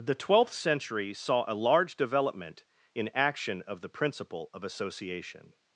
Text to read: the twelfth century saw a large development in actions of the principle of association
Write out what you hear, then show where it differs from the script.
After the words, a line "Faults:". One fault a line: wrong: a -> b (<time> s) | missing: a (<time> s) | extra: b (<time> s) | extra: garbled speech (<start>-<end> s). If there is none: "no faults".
the twelfth century saw a large development in action of the principle of association
Faults:
wrong: actions -> action (3.1 s)